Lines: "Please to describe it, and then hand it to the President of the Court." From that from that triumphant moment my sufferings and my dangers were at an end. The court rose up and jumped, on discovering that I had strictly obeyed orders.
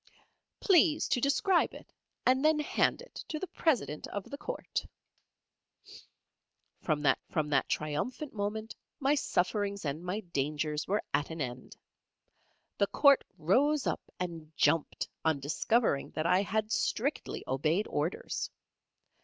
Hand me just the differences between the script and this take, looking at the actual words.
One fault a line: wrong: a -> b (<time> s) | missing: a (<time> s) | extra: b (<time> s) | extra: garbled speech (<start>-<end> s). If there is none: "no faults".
no faults